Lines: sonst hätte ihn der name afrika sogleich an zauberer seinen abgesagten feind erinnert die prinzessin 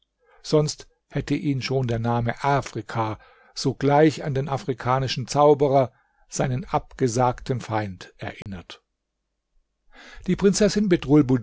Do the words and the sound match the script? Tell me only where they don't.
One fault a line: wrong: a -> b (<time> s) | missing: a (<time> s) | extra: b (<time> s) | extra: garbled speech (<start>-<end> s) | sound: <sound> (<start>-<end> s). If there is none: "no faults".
extra: schon (1.6 s)
extra: den afrikanischen (4.3 s)
sound: dropout (8.4-8.5 s)